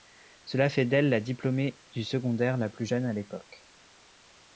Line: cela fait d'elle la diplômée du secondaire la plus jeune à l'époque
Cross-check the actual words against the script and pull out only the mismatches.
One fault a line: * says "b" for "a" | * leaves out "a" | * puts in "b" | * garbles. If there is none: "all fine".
all fine